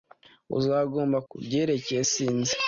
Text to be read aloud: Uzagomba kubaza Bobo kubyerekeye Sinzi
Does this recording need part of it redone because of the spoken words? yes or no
yes